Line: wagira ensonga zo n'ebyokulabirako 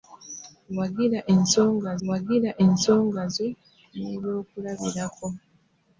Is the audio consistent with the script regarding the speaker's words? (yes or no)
no